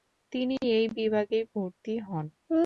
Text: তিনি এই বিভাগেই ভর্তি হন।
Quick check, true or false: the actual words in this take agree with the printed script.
true